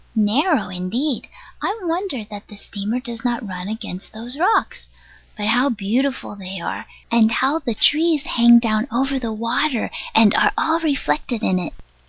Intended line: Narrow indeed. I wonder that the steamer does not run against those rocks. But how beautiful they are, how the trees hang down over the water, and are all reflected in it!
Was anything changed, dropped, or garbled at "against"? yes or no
no